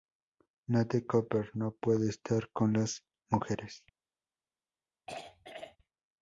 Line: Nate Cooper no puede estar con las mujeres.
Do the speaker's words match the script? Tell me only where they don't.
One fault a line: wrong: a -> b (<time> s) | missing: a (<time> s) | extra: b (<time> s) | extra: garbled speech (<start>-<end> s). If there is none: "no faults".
no faults